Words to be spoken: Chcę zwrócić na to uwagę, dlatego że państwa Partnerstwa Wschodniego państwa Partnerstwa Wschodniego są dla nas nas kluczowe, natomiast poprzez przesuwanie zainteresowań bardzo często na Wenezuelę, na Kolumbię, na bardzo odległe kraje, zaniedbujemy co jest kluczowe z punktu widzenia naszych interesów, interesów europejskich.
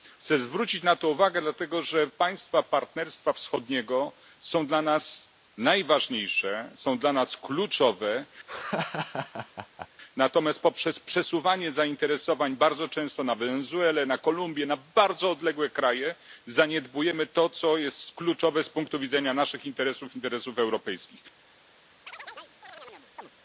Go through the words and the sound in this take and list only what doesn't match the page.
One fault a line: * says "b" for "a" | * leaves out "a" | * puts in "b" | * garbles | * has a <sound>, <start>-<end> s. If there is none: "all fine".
* says "są dla nas najważniejsze" for "państwa Partnerstwa Wschodniego"
* leaves out "nas"
* has a laugh, 8.5-9.9 s
* puts in "to"
* has a chirp, 22.1-23.3 s